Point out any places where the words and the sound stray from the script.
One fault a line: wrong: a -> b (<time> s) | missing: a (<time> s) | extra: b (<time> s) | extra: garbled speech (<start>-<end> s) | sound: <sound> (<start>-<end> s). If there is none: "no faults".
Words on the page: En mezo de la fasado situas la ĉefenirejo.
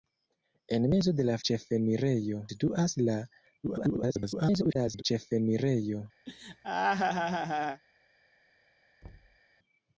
wrong: fasado -> ĉefenirejo (1.5 s)
extra: garbled speech (3.6-5.0 s)
sound: laugh (6.3-7.8 s)
sound: thud (9.0-9.4 s)